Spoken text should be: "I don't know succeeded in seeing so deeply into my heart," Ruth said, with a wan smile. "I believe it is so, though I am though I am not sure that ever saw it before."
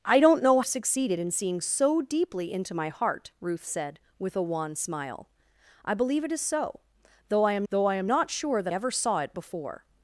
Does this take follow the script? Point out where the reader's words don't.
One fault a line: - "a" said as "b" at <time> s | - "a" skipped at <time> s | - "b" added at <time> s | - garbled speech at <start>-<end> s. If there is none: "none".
none